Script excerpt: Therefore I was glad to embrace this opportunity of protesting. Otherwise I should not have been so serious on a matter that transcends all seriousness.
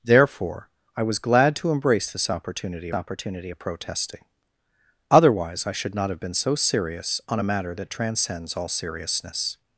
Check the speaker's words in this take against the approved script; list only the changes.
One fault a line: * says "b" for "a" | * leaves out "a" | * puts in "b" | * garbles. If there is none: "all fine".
* puts in "opportunity"